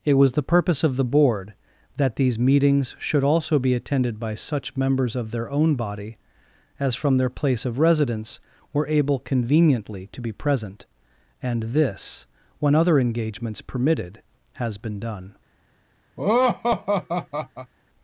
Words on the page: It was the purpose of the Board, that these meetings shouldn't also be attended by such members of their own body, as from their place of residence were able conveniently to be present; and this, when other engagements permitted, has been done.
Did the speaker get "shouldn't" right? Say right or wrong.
wrong